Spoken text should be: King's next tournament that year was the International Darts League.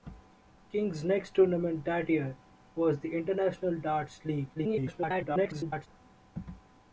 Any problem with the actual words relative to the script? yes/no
yes